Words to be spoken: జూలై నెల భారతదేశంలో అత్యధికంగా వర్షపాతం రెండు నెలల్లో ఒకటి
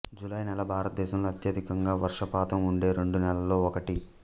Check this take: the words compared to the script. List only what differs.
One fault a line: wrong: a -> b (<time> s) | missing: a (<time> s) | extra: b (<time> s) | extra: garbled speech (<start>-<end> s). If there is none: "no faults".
extra: ఉండే (2.6 s)